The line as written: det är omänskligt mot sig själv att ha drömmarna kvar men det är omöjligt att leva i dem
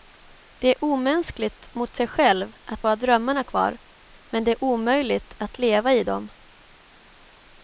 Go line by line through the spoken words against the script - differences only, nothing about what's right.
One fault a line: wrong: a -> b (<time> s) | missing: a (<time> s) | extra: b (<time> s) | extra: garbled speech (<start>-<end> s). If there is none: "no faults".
no faults